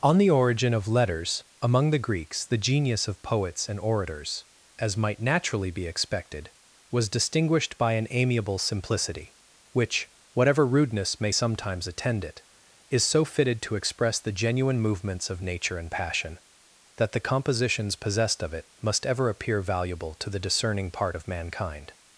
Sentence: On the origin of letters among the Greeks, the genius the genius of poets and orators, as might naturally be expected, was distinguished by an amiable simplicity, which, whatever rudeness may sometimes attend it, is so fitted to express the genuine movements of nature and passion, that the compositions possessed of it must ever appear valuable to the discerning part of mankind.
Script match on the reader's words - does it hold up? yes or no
no